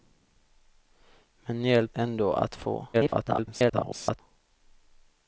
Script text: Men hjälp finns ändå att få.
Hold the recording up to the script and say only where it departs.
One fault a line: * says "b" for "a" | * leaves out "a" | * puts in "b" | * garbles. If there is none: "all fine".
* leaves out "finns"
* garbles